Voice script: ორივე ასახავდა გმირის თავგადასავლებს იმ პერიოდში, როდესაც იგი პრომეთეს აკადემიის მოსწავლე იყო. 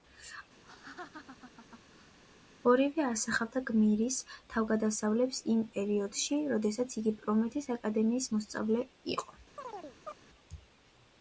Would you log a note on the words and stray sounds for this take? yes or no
yes